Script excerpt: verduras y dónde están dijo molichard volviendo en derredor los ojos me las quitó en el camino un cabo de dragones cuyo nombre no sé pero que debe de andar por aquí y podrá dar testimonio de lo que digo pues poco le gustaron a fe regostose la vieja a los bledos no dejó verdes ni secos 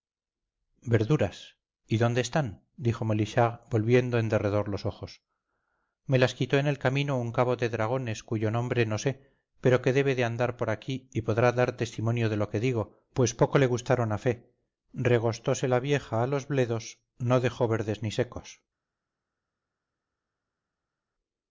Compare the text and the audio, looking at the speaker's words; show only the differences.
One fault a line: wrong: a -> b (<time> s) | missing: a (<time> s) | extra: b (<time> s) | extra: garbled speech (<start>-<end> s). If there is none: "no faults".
no faults